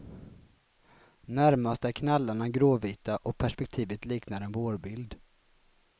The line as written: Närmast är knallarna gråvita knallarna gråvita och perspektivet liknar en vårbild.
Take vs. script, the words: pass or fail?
fail